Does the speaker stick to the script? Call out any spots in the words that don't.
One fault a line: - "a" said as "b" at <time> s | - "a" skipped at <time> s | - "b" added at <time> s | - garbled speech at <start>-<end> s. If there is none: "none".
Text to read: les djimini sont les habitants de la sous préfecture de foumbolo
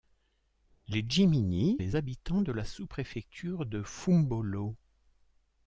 - "sont" skipped at 1.8 s